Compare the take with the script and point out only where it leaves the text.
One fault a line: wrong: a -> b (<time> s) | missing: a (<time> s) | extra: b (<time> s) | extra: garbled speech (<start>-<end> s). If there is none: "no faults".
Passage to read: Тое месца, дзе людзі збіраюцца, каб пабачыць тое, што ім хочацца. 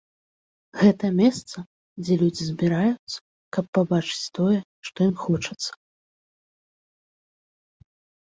wrong: Тое -> Гэта (0.8 s)